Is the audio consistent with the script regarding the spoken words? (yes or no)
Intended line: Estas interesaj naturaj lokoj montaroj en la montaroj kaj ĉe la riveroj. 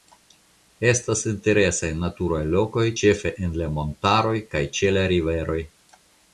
no